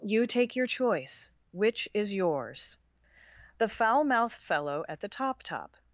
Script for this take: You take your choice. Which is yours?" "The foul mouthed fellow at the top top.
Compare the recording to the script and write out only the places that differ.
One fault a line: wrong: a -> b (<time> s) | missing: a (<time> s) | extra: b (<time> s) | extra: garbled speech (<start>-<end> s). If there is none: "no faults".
no faults